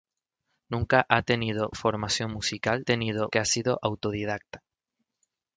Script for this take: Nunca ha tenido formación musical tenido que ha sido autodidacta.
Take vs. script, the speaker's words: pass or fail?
pass